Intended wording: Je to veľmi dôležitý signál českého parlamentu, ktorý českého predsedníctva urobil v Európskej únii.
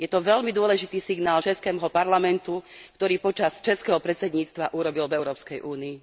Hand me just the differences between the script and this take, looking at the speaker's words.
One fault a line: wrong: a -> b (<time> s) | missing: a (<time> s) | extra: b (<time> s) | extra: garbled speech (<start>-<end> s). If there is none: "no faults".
extra: počas (3.2 s)